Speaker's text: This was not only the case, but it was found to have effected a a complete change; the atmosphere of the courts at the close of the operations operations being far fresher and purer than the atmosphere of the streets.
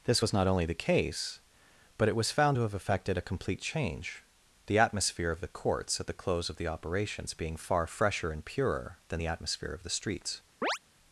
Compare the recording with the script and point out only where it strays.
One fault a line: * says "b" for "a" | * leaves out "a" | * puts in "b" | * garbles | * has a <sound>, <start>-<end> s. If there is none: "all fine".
* leaves out "a"
* leaves out "operations"
* has a chirp, 10.6-10.8 s